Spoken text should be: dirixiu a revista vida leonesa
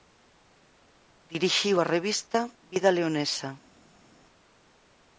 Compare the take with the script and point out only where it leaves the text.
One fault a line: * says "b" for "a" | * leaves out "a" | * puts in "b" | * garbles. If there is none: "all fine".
all fine